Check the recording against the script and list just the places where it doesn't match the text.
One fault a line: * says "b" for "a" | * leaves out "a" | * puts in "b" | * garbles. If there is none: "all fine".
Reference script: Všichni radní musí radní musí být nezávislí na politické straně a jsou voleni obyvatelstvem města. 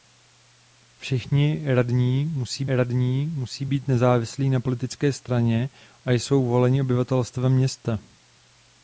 all fine